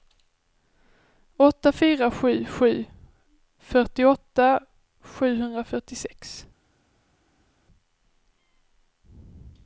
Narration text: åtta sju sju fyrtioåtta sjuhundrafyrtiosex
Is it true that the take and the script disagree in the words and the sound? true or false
true